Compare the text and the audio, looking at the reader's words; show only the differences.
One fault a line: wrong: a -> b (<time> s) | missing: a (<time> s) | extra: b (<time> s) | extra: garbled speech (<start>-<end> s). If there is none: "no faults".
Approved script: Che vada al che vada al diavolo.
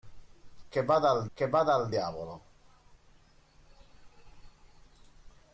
no faults